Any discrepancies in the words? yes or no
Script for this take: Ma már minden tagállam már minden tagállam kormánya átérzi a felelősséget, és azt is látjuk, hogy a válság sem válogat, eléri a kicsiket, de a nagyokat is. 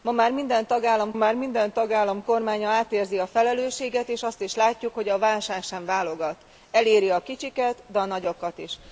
no